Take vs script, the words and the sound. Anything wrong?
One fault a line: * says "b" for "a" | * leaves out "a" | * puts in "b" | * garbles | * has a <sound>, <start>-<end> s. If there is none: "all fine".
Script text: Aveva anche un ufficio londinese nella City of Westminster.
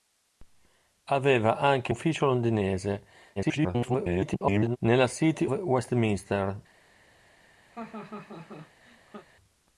* leaves out "un"
* garbles
* leaves out "of"
* has a laugh, 7.7-9.3 s